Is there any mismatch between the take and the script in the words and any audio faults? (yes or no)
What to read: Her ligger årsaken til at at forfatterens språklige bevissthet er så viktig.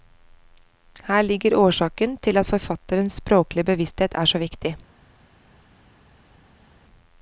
yes